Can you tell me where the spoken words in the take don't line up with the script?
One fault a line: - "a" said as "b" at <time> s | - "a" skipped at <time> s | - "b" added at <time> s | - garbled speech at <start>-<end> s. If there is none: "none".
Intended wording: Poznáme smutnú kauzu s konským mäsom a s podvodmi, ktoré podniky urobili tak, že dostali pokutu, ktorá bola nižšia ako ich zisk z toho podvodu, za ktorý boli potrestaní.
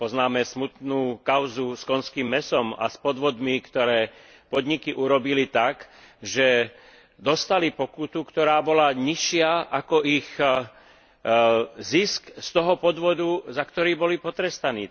none